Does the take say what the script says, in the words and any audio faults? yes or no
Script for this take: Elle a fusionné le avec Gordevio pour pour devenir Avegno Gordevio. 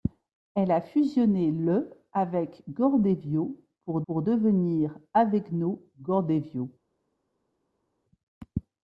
yes